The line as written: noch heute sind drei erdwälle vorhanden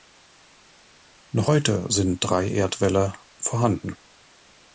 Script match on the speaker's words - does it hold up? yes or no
yes